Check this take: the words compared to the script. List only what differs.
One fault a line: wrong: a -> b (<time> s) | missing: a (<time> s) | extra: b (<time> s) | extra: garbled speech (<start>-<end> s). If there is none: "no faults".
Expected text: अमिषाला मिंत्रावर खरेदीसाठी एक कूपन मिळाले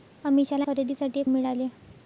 missing: मिंत्रावर (0.7 s)
missing: कूपन (1.3 s)